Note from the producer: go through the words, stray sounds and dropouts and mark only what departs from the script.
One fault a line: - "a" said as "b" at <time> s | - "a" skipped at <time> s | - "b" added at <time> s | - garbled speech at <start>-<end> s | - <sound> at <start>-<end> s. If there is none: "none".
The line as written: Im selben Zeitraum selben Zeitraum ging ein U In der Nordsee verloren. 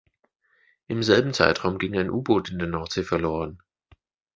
- "selben Zeitraum" skipped at 1.8 s
- "Boot" added at 2.2 s